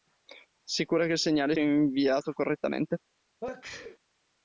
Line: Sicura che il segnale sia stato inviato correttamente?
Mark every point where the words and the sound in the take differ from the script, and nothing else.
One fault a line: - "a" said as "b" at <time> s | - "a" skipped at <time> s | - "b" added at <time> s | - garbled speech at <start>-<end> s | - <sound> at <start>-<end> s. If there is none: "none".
- "sia stato" skipped at 1.6 s
- sneeze at 3.4-4.0 s